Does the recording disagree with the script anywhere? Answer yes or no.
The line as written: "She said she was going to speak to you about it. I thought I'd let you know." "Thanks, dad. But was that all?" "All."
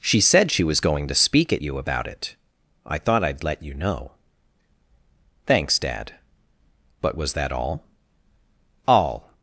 yes